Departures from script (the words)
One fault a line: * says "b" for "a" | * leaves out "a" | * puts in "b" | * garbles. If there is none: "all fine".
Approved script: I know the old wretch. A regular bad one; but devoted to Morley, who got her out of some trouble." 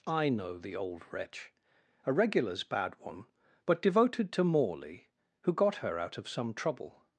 * says "regulars" for "regular"